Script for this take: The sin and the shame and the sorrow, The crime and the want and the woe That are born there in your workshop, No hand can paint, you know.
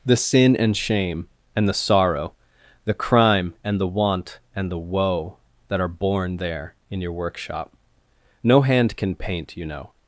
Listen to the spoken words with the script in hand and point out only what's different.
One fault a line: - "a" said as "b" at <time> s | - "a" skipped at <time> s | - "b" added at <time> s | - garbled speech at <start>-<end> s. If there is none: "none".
- "the" skipped at 0.8 s